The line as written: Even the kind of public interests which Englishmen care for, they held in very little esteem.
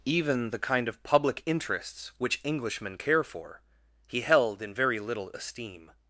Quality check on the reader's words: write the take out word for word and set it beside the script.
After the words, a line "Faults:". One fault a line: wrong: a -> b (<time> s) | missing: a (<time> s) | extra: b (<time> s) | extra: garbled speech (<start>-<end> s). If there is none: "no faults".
Even the kind of public interests which Englishmen care for, he held in very little esteem.
Faults:
wrong: they -> he (4.1 s)